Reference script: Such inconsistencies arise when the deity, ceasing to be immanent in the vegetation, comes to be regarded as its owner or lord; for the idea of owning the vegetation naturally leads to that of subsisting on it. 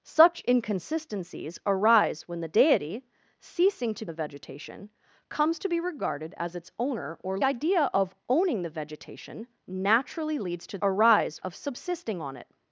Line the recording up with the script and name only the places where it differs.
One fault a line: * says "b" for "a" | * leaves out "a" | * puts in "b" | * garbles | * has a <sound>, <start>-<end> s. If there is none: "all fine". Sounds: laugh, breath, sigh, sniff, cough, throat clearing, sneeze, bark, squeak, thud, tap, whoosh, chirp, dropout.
* leaves out "be immanent in"
* leaves out "lord for the"
* says "arise" for "that"